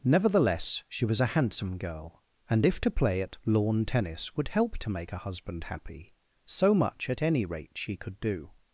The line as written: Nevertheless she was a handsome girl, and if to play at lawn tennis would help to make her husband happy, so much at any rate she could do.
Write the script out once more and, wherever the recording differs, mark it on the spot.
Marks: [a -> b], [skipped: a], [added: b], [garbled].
Nevertheless she was a handsome girl, and if to play at lawn tennis would help to make her husband happy, so much at any rate she could do.